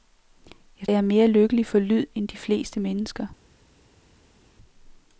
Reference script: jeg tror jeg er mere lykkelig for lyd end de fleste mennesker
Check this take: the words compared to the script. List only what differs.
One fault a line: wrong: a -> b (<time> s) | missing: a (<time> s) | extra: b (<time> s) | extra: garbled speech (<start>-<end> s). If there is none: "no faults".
missing: tror (0.9 s)